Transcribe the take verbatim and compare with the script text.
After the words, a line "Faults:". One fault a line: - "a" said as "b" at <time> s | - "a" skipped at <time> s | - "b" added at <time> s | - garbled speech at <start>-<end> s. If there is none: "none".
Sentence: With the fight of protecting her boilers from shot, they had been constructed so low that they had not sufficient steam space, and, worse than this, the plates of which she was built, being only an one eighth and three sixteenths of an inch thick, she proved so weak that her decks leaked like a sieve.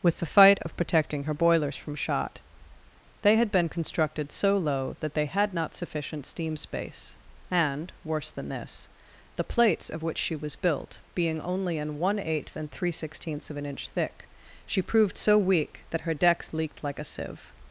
With the fight of protecting her boilers from shot, they had been constructed so low that they had not sufficient steam space, and, worse than this, the plates of which she was built, being only an one eighth and three sixteenths of an inch thick, she proved so weak that her decks leaked like a sieve.
Faults:
none